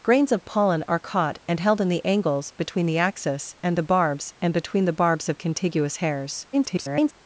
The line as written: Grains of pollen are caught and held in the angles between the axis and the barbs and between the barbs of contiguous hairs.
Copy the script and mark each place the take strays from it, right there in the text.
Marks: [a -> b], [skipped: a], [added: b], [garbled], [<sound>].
Grains of pollen are caught and held in the angles between the axis and the barbs and between the barbs of contiguous hairs. [garbled]